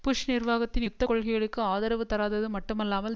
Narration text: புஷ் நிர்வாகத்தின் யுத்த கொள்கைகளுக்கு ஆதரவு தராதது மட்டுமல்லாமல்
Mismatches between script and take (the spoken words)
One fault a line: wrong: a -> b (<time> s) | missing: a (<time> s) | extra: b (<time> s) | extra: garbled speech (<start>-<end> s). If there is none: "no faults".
no faults